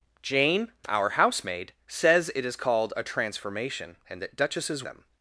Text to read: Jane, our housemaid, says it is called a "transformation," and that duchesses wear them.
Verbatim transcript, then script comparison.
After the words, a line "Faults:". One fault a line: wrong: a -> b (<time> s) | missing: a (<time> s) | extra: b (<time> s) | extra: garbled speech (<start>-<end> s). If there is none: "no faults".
Jane, our housemaid, says it is called a "transformation," and that duchesses them.
Faults:
missing: wear (4.8 s)